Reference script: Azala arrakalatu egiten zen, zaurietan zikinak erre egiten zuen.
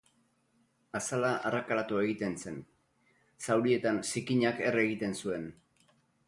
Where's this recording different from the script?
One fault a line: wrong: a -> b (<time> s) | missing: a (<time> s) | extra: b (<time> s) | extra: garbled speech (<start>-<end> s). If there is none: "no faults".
no faults